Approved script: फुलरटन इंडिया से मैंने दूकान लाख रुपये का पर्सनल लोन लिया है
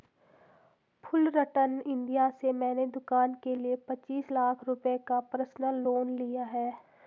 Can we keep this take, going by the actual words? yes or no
no